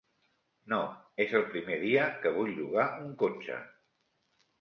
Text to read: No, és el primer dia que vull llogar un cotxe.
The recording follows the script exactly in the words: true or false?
true